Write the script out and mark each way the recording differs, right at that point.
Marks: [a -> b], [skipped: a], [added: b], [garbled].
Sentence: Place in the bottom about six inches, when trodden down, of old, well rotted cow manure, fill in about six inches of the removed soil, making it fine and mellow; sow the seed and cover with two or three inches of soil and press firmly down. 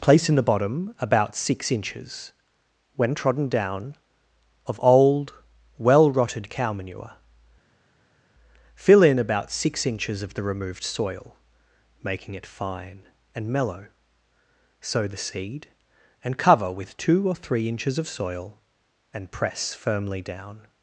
Place in the bottom about six inches, when trodden down, of old, well rotted cow manure, fill in about six inches of the removed soil, making it fine and mellow; sow the seed and cover with two or three inches of soil and press firmly down.